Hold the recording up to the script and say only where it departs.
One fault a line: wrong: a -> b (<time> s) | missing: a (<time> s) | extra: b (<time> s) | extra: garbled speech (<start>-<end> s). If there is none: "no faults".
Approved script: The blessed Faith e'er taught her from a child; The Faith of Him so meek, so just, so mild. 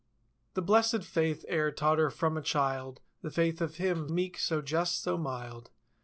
missing: so (4.1 s)